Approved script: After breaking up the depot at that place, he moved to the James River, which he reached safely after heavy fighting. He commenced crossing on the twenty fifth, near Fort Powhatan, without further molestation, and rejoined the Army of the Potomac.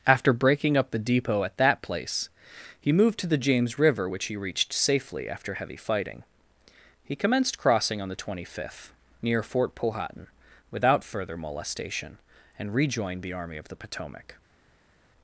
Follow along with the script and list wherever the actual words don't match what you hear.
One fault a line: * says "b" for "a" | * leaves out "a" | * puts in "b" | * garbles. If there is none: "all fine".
all fine